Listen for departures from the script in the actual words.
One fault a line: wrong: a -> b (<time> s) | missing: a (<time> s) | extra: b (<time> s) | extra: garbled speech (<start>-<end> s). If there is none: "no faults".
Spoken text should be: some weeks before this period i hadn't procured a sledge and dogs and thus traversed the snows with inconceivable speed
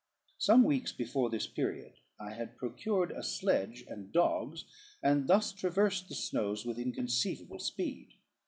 wrong: hadn't -> had (2.3 s)